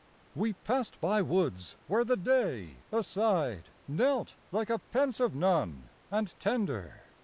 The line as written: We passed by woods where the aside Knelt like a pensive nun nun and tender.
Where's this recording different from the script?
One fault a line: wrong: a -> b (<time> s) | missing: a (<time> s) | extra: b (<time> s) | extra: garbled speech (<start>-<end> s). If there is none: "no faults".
extra: day (2.2 s)
missing: nun (5.9 s)